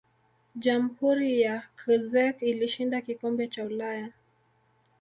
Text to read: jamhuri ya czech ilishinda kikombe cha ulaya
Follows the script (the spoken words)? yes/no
yes